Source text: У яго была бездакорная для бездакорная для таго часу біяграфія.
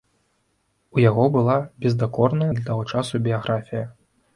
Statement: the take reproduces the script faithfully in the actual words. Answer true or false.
false